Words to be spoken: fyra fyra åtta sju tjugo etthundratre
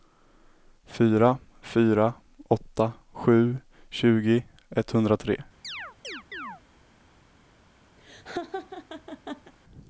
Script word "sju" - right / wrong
right